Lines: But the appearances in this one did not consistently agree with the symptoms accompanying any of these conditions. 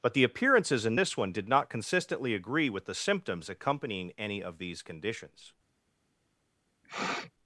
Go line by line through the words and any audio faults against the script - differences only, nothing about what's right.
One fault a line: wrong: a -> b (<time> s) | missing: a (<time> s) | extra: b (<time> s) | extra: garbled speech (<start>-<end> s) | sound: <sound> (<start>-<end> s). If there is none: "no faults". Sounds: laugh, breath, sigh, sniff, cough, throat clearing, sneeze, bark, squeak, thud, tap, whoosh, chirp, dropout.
sound: sniff (6.8-7.3 s)